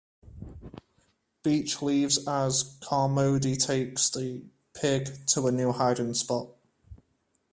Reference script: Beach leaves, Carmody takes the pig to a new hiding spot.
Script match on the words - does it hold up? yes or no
no